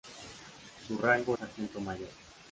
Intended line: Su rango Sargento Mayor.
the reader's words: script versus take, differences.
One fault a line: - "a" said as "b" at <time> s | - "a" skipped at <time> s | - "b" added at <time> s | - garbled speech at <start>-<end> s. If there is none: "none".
none